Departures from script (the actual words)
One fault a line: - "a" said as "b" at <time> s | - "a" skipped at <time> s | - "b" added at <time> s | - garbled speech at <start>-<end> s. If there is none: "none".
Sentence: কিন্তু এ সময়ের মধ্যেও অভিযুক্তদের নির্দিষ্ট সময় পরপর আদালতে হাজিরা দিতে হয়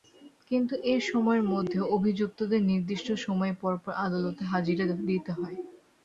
none